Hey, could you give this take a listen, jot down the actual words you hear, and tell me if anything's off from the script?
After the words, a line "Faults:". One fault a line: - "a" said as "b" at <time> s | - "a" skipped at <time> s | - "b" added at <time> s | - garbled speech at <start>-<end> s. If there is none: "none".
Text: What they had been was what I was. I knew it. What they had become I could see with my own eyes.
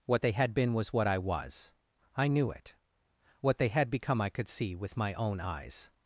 What they had been was what I was. I knew it. What they had become I could see with my own eyes.
Faults:
none